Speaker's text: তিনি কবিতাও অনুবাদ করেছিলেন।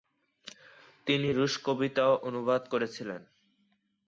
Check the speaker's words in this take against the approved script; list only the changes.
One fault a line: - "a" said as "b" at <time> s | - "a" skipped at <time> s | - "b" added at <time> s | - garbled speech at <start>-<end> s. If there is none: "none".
- "রুশ" added at 1.3 s